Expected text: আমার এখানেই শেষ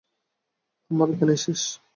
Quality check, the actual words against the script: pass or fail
pass